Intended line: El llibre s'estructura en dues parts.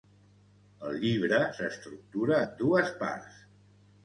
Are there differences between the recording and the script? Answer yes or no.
no